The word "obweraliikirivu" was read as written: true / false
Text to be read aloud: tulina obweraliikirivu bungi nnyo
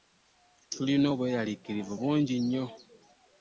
true